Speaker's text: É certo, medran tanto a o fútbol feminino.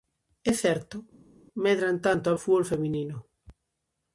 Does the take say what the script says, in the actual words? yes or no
yes